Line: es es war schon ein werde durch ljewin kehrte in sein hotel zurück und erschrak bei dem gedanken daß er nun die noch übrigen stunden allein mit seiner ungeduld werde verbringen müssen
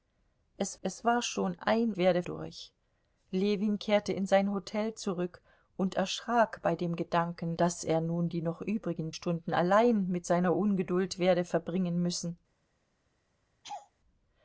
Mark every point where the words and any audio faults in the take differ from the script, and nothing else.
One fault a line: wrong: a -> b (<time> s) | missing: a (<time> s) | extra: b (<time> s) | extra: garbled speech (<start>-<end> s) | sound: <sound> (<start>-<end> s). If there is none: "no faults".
sound: laugh (13.6-13.9 s)